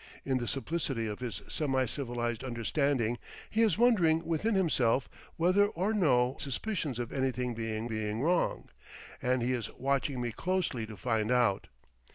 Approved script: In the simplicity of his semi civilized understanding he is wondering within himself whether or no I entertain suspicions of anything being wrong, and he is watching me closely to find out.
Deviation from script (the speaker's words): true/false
true